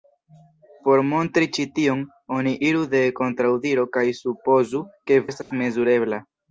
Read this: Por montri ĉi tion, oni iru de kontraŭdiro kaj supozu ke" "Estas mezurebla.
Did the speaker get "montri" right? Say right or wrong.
right